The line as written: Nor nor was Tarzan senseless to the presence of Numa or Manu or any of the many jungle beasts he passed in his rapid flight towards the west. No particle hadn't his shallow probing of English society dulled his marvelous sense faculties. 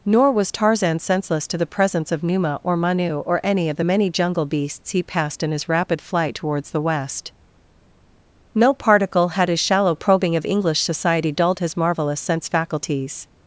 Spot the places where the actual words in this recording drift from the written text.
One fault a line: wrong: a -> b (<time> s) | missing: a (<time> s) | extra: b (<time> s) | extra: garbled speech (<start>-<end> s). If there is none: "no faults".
missing: nor (0.3 s)
wrong: hadn't -> had (9.3 s)